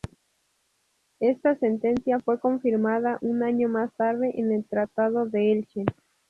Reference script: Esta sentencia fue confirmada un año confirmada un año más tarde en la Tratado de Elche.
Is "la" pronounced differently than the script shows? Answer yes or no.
yes